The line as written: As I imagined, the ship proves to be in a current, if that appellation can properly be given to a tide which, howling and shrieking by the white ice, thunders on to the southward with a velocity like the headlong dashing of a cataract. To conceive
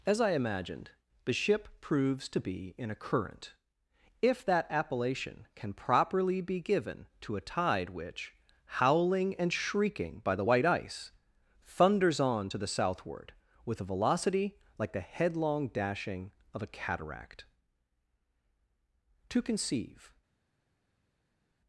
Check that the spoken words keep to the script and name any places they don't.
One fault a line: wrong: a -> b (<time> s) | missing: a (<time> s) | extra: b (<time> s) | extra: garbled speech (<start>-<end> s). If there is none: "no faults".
no faults